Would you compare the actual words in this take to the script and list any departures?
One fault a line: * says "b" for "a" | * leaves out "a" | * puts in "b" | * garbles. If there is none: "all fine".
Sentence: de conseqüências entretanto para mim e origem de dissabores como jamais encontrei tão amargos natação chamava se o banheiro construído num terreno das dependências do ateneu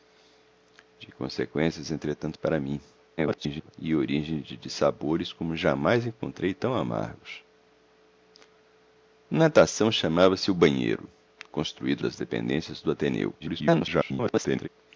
* garbles
* leaves out "num terreno"
* garbles